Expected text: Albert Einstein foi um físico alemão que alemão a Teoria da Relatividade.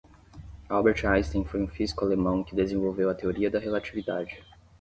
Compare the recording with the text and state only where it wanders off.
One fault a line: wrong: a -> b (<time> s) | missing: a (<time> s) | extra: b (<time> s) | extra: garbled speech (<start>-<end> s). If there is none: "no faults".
wrong: alemão -> desenvolveu (2.5 s)